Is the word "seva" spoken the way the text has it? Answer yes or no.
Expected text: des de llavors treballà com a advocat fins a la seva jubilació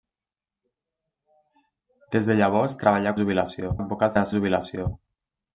no